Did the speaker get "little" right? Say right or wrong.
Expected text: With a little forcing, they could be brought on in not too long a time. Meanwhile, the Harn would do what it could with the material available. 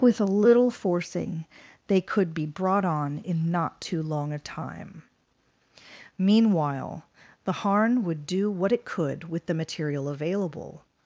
right